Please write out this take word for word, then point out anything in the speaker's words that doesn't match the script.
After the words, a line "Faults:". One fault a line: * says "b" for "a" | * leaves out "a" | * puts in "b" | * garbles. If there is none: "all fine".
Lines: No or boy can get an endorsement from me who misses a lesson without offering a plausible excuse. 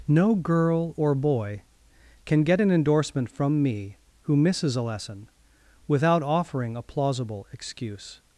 No girl or boy can get an endorsement from me who misses a lesson without offering a plausible excuse.
Faults:
* puts in "girl"